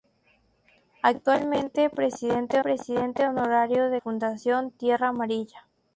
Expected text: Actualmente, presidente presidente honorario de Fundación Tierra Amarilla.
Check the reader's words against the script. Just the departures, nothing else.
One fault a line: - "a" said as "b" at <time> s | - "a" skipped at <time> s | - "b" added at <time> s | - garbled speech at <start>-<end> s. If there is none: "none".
none